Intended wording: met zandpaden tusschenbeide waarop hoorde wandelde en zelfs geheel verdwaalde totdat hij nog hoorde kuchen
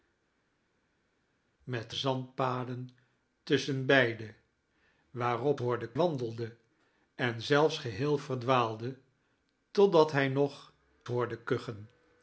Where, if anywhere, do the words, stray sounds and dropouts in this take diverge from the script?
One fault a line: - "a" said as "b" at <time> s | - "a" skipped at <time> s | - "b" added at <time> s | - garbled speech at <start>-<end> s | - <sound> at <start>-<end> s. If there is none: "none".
none